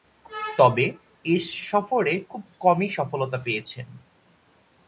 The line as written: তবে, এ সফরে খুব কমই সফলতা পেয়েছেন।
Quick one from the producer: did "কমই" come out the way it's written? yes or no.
yes